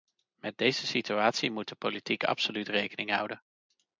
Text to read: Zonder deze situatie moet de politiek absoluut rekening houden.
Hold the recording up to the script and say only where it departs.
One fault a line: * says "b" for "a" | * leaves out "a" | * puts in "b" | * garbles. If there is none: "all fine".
* says "Met" for "Zonder"